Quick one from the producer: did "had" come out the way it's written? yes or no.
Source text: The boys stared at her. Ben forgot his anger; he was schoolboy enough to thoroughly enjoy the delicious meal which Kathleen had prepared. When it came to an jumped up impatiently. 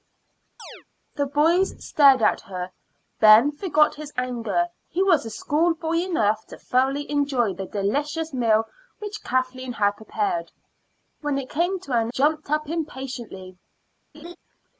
yes